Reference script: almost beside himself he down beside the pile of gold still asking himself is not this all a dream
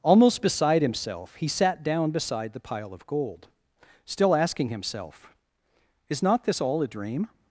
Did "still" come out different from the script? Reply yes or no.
no